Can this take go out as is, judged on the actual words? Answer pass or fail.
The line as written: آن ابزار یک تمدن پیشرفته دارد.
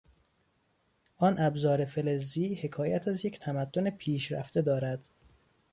fail